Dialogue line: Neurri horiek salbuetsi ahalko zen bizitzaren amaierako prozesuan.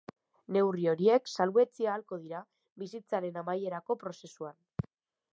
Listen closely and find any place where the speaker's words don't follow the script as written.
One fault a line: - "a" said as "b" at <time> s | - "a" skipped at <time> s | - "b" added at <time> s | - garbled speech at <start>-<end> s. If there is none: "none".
- "zen" said as "dira" at 2.2 s